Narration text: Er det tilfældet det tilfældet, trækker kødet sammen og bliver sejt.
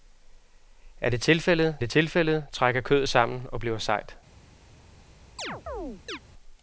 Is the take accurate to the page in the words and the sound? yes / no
no